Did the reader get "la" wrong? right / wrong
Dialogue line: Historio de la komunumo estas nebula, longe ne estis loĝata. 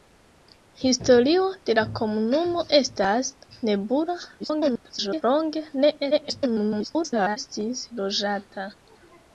right